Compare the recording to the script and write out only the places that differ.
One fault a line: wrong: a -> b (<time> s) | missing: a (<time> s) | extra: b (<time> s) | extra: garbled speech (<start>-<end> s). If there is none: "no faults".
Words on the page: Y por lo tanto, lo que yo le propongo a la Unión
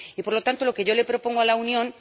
no faults